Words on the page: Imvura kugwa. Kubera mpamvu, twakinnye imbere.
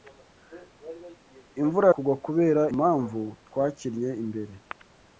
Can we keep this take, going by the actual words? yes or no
yes